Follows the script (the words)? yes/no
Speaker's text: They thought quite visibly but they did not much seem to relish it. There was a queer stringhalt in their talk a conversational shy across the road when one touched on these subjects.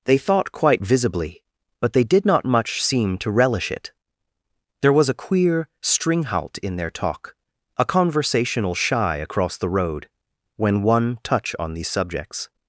no